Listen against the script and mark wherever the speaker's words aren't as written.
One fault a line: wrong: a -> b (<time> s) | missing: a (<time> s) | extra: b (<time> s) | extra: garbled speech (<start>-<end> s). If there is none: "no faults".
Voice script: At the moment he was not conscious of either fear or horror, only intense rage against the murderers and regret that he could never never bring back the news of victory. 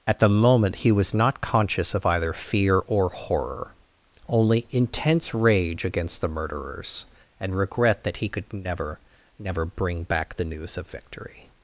no faults